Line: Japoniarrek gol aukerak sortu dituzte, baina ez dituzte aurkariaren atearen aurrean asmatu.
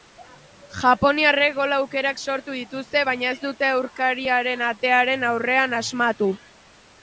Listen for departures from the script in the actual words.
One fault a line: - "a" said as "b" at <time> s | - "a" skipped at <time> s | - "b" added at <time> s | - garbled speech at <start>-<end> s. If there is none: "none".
- "dituzte" said as "dute" at 3.4 s